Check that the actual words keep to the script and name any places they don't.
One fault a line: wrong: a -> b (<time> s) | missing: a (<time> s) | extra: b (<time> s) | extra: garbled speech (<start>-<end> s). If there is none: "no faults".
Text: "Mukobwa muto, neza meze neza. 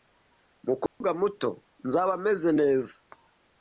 wrong: neza -> nzaba (1.9 s)